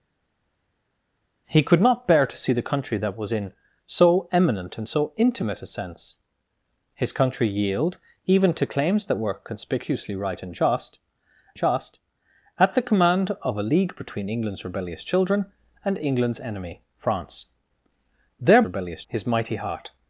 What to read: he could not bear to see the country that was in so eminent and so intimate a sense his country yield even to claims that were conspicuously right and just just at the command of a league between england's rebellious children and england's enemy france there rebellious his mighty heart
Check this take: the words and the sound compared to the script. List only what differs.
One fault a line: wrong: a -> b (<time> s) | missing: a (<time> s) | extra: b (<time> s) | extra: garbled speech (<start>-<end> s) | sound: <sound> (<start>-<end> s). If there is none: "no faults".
no faults